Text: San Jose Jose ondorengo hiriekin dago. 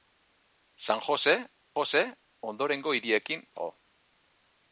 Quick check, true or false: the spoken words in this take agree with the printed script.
true